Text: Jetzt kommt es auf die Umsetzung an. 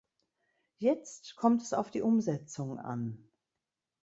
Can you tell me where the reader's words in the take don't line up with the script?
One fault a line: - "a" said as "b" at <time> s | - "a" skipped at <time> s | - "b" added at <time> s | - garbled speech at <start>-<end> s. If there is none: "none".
none